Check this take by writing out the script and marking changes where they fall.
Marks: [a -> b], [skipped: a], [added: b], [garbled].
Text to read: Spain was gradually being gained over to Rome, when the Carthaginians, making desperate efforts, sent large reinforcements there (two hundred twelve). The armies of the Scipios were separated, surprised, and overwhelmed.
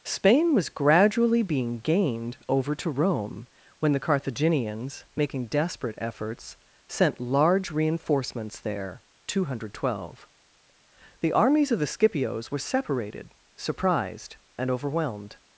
Spain was gradually being gained over to Rome, when the Carthaginians, making desperate efforts, sent large reinforcements there (two hundred twelve). The armies of the Scipios were separated, surprised, and overwhelmed.